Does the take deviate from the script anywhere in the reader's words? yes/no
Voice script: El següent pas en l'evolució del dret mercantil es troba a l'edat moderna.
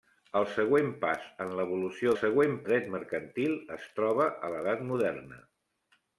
yes